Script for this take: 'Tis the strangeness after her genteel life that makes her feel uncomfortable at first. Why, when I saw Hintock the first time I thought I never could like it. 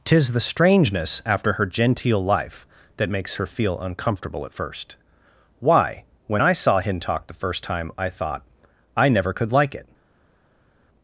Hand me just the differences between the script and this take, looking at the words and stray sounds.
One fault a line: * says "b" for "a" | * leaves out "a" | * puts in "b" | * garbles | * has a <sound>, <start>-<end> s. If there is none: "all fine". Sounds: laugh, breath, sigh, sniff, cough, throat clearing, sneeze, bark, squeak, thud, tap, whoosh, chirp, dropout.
all fine